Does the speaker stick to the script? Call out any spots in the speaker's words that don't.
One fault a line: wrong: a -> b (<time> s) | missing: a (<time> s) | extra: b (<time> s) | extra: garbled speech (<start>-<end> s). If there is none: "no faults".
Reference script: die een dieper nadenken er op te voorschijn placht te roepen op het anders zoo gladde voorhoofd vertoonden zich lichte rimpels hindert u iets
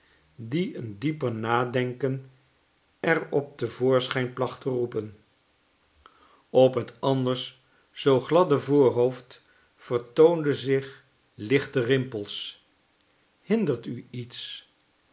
no faults